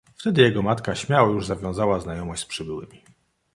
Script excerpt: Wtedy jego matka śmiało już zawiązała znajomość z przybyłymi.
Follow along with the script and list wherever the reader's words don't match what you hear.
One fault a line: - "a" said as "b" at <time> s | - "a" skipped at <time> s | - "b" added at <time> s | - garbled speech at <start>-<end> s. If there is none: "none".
none